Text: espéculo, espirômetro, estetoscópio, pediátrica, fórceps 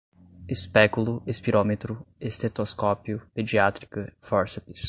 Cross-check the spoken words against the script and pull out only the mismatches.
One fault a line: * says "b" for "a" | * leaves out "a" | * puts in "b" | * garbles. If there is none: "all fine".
all fine